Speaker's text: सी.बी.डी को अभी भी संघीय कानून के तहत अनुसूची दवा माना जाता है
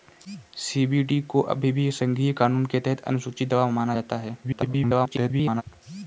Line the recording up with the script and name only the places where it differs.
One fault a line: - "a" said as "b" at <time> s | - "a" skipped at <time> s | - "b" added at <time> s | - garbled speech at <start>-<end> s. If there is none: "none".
- garbled speech at 4.4-5.6 s